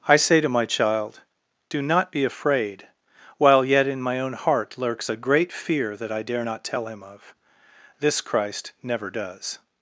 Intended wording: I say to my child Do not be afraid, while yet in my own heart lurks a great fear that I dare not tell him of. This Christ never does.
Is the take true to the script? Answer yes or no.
yes